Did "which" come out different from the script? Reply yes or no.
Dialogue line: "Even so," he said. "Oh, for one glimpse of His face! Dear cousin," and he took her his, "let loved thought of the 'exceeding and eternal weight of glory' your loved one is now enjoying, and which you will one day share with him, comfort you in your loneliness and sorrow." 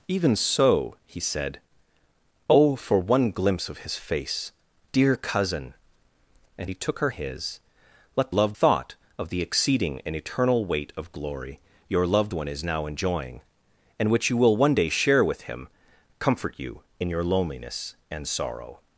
no